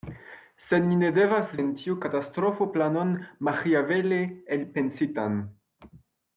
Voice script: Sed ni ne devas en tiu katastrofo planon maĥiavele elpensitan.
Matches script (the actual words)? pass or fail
pass